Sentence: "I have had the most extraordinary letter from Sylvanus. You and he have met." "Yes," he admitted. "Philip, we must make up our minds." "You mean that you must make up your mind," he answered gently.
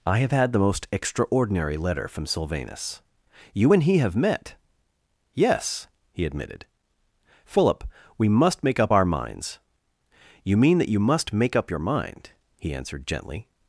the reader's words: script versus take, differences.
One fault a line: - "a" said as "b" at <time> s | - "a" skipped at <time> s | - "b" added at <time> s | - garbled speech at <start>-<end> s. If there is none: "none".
none